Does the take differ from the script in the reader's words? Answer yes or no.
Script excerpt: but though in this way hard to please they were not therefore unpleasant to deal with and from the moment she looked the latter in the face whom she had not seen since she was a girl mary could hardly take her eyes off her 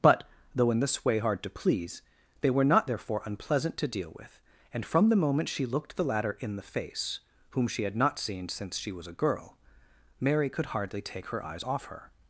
no